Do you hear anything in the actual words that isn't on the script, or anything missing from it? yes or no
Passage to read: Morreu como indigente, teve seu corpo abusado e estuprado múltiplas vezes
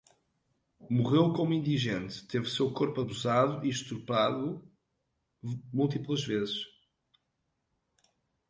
no